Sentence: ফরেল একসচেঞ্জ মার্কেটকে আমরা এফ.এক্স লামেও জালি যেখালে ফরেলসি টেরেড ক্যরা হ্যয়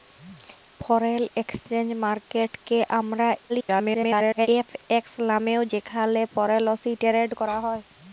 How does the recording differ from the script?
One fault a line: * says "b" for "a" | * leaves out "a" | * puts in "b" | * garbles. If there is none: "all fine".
* garbles
* leaves out "জালি"